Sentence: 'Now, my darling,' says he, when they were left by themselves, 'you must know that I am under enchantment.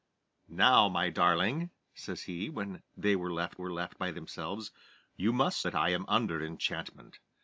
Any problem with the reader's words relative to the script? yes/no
yes